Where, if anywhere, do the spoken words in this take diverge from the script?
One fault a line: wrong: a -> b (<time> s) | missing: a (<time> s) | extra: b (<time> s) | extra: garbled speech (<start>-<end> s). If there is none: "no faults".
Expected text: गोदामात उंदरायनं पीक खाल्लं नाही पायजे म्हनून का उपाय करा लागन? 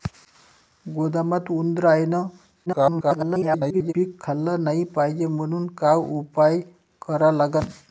extra: garbled speech (2.7-3.9 s)